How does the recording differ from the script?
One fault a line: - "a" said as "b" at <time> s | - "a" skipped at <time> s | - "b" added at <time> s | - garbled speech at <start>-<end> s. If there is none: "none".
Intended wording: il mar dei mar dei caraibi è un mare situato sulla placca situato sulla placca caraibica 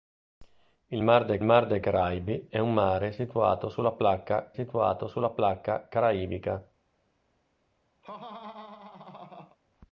none